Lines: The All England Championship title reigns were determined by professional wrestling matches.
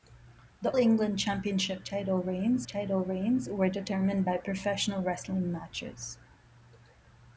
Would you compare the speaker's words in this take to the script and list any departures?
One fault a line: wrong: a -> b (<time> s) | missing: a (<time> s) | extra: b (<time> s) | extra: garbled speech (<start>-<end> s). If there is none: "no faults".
missing: All (0.7 s)
extra: title reigns (2.7 s)